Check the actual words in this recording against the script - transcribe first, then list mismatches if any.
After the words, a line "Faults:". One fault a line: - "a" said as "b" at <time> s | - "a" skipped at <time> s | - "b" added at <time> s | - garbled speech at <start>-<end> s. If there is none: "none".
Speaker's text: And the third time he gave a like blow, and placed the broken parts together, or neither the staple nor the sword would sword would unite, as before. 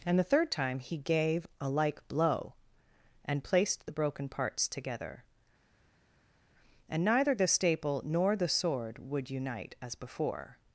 And the third time he gave a like blow, and placed the broken parts together, and neither the staple nor the sword would unite, as before.
Faults:
- "or" said as "and" at 6.9 s
- "sword would" skipped at 9.3 s